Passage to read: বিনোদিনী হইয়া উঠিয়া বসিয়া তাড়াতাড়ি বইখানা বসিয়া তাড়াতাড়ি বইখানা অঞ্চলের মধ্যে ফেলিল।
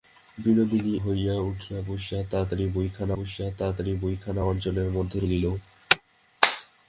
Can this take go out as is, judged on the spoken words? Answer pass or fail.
pass